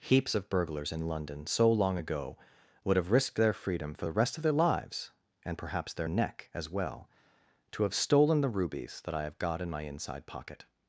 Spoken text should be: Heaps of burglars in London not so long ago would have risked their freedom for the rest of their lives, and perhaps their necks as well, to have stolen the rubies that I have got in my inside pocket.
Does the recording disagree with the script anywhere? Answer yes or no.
yes